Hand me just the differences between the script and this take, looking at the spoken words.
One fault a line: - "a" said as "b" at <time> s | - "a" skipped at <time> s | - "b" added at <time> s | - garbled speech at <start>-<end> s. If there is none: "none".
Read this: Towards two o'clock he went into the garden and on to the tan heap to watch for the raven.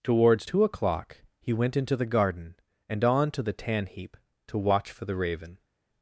none